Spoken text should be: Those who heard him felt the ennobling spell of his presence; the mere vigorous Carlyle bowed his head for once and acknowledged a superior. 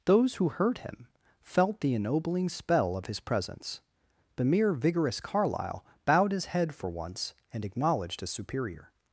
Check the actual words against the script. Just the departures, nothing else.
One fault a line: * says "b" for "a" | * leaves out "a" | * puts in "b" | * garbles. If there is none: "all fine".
all fine